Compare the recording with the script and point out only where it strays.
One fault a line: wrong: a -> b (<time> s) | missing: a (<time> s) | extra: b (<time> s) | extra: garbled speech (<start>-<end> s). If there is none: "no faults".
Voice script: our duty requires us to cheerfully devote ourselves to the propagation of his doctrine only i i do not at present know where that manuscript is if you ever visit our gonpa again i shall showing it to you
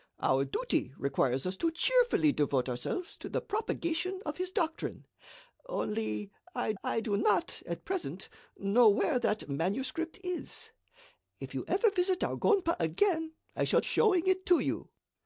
no faults